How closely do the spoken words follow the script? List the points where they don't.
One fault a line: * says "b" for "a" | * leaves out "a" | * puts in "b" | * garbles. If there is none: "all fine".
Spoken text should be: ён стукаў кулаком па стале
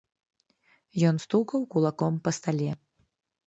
all fine